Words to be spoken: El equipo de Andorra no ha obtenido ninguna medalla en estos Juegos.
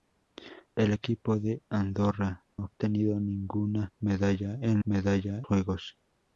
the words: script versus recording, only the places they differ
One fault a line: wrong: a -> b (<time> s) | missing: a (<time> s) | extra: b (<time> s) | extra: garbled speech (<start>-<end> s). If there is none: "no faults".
missing: no (2.4 s)
wrong: estos -> medalla (4.8 s)